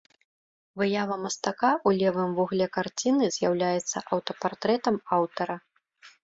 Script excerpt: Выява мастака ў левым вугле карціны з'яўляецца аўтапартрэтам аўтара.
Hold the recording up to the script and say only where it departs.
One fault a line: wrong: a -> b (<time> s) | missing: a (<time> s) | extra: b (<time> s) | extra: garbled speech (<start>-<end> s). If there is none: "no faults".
no faults